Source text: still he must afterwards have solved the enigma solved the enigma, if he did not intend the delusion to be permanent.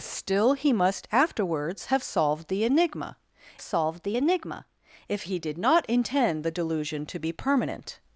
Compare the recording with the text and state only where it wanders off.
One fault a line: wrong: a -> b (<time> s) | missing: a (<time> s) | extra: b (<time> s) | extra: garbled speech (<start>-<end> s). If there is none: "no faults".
no faults